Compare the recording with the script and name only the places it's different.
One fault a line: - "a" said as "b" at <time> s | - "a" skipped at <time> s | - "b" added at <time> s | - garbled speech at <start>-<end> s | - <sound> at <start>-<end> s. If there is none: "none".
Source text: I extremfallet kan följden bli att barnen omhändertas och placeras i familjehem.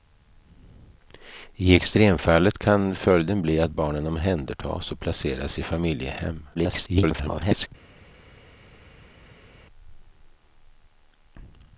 - garbled speech at 6.5-7.7 s